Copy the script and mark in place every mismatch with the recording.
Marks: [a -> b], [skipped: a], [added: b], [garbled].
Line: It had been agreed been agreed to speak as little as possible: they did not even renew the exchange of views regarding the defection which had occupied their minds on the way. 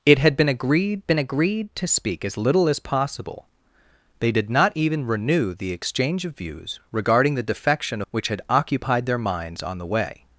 It had been agreed been agreed to speak as little as possible: they did not even renew the exchange of views regarding the defection which had occupied their minds on the way.